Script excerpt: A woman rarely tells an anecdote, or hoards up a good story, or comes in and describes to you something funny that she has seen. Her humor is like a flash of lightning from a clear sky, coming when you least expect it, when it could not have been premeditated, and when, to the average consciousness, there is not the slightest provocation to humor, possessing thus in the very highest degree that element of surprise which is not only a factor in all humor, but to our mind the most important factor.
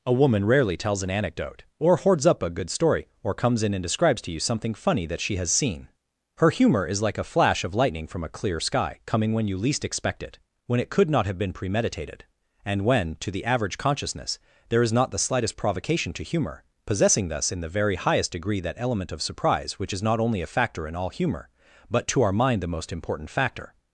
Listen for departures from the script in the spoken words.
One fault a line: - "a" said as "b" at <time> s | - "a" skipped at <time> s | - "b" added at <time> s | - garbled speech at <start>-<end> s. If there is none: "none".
none